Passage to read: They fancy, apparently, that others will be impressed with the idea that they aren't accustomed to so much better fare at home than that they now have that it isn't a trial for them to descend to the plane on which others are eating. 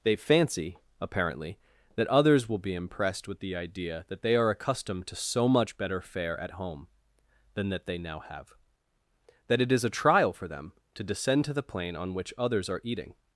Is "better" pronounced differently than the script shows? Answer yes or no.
no